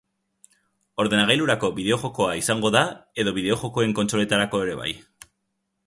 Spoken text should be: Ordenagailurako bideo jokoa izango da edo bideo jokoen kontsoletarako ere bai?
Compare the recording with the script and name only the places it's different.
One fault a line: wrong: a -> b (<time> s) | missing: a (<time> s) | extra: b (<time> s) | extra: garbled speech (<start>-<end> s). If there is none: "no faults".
no faults